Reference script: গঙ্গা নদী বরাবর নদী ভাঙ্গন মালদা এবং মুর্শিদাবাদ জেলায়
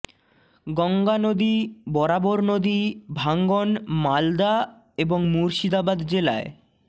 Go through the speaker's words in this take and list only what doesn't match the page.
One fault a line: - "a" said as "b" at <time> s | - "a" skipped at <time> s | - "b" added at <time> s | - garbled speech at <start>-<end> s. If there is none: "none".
none